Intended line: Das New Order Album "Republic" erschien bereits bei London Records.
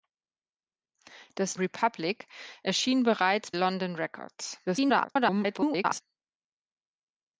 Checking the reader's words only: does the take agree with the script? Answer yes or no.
no